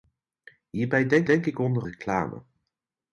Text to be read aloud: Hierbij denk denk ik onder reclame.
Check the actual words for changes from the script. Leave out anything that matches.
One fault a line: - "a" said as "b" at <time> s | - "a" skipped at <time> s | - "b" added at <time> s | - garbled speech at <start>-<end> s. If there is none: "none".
none